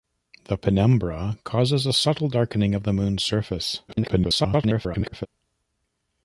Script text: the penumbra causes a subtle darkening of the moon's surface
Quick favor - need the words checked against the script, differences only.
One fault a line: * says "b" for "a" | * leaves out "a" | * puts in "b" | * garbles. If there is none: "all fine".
* garbles